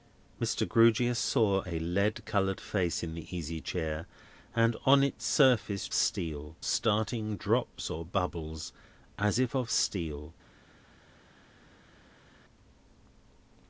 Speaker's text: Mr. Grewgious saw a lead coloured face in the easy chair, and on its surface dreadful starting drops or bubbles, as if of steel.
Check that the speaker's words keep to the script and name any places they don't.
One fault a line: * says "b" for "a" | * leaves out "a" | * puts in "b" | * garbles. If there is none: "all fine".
* says "steel" for "dreadful"